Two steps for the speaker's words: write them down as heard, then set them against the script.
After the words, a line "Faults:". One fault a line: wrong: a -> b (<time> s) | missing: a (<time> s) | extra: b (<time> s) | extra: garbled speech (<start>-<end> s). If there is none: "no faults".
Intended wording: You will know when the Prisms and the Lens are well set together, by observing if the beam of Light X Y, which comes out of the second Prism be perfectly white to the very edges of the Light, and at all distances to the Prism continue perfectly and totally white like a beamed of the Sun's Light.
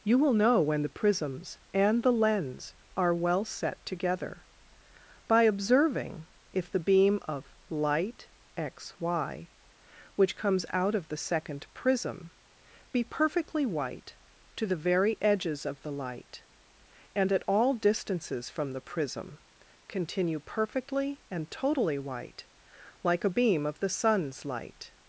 You will know when the Prisms and the Lens are well set together, by observing if the beam of Light X Y, which comes out of the second Prism be perfectly white to the very edges of the Light, and at all distances from the Prism continue perfectly and totally white like a beam of the Sun's Light.
Faults:
wrong: to -> from (18.5 s)
wrong: beamed -> beam (23.3 s)